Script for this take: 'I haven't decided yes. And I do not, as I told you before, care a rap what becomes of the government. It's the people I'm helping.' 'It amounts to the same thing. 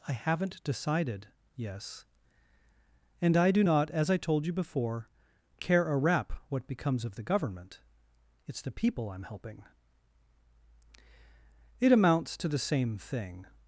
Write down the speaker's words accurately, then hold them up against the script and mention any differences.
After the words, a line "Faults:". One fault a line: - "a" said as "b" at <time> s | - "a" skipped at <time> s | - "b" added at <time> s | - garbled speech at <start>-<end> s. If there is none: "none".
'I haven't decided yes. And I do not, as I told you before, care a rap what becomes of the government. It's the people I'm helping.' 'It amounts to the same thing.
Faults:
none